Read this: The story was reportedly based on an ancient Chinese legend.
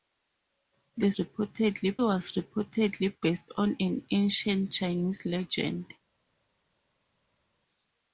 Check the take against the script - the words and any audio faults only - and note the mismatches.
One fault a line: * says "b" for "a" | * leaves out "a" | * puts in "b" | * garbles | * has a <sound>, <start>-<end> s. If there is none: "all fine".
* says "reportedly" for "story"